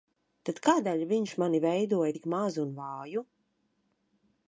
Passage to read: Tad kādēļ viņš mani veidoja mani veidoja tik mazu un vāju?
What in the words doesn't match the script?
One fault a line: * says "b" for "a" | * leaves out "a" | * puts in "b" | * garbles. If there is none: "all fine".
* leaves out "mani veidoja"